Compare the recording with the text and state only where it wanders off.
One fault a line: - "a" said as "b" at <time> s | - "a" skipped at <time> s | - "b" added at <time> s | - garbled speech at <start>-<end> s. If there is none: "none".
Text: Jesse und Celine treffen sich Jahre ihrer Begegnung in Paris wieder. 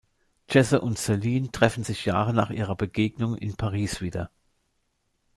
- "nach" added at 2.3 s